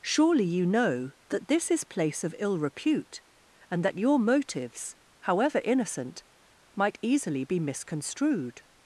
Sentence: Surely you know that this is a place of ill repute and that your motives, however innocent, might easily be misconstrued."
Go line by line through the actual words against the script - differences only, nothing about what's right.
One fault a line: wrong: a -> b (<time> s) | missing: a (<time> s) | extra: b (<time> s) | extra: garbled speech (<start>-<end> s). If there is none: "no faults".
missing: a (1.8 s)